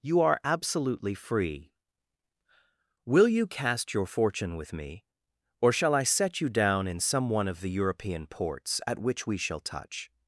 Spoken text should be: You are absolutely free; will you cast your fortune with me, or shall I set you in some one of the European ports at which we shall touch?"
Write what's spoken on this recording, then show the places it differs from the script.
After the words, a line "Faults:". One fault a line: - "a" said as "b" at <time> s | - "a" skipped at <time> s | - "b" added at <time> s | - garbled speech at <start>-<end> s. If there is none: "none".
You are absolutely free; will you cast your fortune with me, or shall I set you down in some one of the European ports at which we shall touch?"
Faults:
- "down" added at 6.5 s